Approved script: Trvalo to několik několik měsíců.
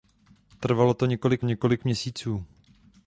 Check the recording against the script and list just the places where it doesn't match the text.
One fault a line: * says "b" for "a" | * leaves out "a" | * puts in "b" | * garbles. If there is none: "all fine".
all fine